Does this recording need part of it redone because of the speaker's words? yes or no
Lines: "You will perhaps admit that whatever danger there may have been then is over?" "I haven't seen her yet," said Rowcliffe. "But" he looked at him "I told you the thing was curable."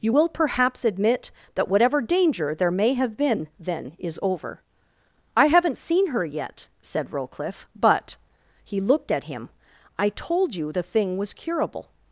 no